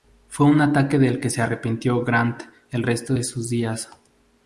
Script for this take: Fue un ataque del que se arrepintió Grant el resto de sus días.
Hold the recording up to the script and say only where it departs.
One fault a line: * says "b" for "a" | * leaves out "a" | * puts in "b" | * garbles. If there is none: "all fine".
all fine